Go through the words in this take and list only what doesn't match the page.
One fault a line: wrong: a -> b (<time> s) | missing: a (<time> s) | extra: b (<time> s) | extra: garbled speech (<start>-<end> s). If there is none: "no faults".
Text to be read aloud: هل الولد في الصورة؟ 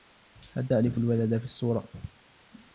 extra: تعرف (0.7 s)